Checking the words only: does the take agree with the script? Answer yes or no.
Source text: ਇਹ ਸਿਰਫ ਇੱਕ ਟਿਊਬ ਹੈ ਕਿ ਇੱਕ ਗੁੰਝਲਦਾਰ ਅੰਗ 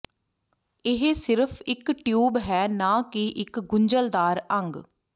no